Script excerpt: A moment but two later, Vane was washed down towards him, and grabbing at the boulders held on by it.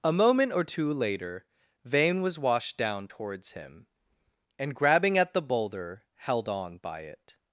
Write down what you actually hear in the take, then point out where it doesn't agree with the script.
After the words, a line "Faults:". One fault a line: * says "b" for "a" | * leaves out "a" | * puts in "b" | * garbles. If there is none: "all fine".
A moment or two later, Vane was washed down towards him, and grabbing at the boulder held on by it.
Faults:
* says "or" for "but"
* says "boulder" for "boulders"